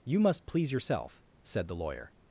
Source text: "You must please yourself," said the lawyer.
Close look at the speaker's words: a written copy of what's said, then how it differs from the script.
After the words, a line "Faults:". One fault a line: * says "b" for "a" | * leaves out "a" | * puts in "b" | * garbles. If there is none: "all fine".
"You must please yourself," said the lawyer.
Faults:
all fine